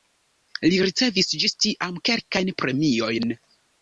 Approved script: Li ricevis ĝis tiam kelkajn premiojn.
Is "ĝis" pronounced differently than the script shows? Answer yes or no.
no